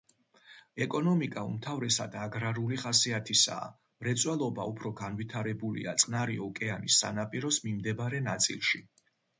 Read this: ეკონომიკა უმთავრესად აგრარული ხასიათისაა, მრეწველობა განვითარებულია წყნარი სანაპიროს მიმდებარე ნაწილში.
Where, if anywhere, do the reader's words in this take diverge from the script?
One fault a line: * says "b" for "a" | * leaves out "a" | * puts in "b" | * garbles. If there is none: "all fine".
* puts in "უფრო"
* puts in "ოკეანის"